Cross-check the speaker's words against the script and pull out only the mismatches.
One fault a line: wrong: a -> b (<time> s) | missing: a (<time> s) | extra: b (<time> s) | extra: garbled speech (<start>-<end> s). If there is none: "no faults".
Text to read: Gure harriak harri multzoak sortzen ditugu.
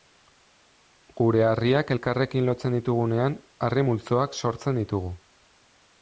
extra: elkarrekin lotzen ditugunean (1.9 s)